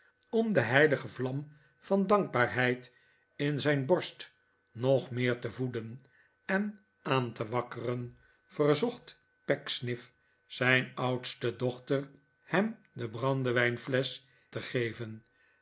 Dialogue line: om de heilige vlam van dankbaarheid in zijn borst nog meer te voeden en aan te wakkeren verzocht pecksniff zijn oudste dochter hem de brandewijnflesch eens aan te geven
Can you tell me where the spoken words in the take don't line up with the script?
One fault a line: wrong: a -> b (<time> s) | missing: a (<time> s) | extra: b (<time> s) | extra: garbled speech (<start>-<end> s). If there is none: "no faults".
missing: eens aan (14.2 s)